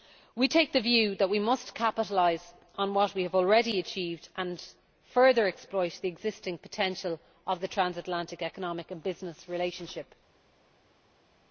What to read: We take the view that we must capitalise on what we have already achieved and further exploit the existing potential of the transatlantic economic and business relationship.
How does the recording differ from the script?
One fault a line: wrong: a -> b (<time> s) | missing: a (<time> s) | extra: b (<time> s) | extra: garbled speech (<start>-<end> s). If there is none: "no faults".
no faults